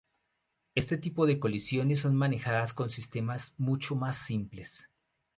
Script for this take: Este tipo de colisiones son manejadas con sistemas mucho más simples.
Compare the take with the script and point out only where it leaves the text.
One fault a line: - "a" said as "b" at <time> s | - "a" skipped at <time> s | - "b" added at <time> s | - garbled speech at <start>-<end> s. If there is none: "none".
none